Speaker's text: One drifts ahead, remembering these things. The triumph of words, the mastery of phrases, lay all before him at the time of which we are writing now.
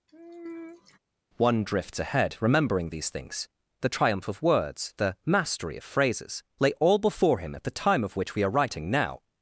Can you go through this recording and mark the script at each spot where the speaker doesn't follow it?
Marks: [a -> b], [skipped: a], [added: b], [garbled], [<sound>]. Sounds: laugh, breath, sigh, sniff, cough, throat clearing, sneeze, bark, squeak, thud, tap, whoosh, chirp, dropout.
[sigh] One drifts ahead, remembering these things. The triumph of words, the mastery of phrases, lay all before him at the time of which we are writing now.